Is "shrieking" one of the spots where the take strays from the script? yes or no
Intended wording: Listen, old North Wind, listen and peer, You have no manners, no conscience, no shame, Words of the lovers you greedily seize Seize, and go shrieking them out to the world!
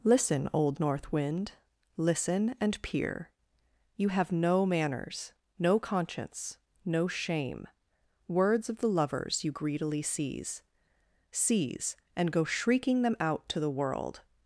no